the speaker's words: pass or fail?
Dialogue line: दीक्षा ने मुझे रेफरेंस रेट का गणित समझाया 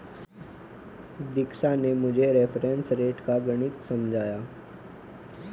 pass